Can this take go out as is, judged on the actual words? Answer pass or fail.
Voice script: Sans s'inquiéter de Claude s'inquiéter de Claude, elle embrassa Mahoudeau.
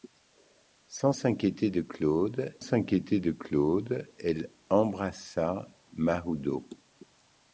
pass